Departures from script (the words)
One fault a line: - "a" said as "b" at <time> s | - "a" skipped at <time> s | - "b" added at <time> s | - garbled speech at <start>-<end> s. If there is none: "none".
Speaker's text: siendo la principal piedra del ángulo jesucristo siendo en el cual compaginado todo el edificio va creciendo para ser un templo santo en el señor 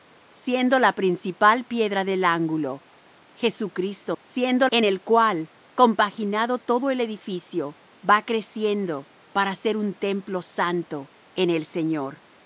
none